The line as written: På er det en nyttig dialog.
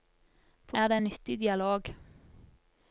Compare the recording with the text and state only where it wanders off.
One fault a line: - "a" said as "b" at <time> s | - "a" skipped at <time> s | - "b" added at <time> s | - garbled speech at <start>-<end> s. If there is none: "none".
none